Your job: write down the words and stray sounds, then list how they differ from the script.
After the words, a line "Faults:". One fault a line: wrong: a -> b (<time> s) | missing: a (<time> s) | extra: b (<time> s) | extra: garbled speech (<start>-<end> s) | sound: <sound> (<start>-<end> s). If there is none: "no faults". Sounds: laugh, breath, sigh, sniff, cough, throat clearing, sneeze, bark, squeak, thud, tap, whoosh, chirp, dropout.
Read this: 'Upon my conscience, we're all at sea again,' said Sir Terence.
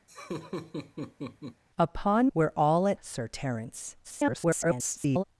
'Upon we're all at Sir Terence. [garbled]
Faults:
sound: laugh (0.1-1.6 s)
missing: my conscience (2.3 s)
missing: sea again said (3.0 s)
extra: garbled speech (4.0-5.2 s)